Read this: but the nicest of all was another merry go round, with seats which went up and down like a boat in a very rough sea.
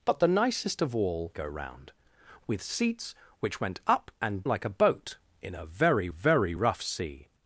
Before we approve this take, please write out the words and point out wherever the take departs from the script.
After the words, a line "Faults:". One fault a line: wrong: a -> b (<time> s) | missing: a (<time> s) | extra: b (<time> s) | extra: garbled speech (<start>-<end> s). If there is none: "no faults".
but the nicest of all go round, with seats which went up and like a boat in a very very rough sea.
Faults:
missing: was another merry (1.3 s)
missing: down (4.4 s)
extra: very (6.1 s)